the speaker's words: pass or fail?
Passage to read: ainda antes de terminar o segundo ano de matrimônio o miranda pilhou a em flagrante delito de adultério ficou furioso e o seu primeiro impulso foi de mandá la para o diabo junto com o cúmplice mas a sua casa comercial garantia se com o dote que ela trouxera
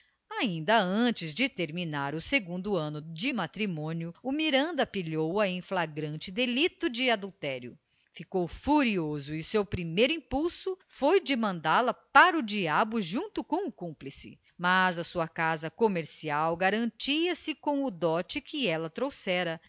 pass